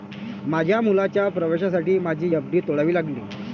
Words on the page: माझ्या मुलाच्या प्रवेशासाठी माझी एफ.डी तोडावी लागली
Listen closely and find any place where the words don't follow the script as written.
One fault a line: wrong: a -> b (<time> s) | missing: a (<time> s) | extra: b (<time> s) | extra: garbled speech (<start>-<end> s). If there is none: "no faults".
no faults